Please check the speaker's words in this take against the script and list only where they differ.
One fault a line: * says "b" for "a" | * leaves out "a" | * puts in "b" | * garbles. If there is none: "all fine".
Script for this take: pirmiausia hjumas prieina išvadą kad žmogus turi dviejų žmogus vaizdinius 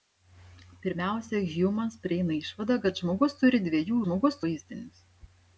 all fine